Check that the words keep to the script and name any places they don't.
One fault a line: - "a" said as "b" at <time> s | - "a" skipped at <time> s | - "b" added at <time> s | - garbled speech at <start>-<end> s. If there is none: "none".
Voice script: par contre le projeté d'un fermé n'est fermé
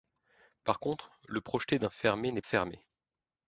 none